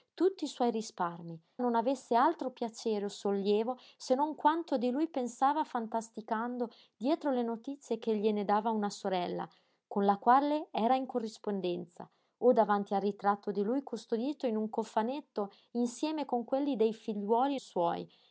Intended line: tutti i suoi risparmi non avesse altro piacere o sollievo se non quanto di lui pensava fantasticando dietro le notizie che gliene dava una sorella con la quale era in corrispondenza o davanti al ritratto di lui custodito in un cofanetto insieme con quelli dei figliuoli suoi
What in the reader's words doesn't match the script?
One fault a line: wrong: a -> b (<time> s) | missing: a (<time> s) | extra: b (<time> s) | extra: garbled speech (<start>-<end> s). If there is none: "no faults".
no faults